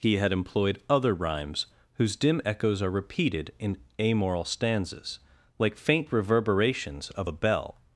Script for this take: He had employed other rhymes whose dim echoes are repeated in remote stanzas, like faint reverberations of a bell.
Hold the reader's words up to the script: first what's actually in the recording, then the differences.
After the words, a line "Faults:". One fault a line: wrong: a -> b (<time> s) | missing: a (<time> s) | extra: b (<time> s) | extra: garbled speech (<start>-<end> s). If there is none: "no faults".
He had employed other rhymes whose dim echoes are repeated in amoral stanzas, like faint reverberations of a bell.
Faults:
wrong: remote -> amoral (4.0 s)